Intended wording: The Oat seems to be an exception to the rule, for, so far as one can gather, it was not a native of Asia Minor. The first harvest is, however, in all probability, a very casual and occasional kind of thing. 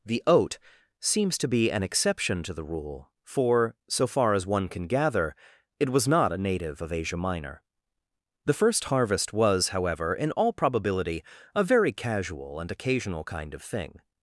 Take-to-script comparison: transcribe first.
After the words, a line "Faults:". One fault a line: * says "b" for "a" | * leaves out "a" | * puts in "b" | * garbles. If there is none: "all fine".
The Oat seems to be an exception to the rule, for, so far as one can gather, it was not a native of Asia Minor. The first harvest was, however, in all probability, a very casual and occasional kind of thing.
Faults:
* says "was" for "is"